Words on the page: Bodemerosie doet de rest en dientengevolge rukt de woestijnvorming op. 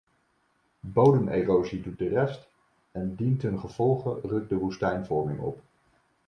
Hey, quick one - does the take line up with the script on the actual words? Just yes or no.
yes